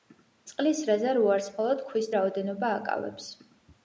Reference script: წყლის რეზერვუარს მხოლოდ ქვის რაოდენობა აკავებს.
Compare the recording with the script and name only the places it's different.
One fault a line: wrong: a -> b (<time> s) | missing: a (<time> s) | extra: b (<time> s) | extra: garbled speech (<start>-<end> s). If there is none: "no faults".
no faults